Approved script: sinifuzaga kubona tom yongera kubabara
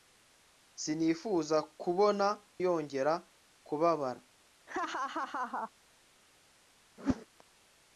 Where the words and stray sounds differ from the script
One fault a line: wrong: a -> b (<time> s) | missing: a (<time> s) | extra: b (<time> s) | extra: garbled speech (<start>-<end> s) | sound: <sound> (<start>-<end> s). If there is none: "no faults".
missing: tom (2.3 s)
sound: laugh (4.7-5.7 s)
sound: whoosh (7.0-7.3 s)